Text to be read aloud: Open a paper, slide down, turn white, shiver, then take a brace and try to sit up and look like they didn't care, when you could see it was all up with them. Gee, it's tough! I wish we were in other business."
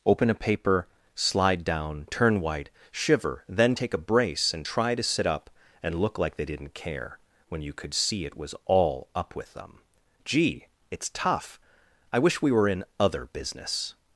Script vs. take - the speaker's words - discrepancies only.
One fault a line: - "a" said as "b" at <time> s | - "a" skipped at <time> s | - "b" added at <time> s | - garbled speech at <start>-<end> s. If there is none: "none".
none